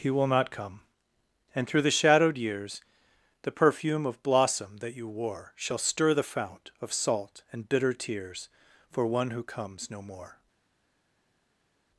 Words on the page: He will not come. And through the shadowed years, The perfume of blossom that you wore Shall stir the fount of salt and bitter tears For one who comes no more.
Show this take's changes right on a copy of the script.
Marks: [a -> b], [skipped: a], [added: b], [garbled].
He will not come. And through the shadowed years, The perfume of blossom that you wore Shall stir the fount of salt and bitter tears For one who comes no more.